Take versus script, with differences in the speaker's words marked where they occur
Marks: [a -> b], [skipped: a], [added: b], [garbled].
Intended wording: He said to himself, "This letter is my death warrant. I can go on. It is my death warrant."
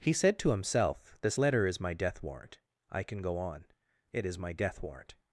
He said to himself, "This letter is my death warrant. I can go on. It is my death warrant."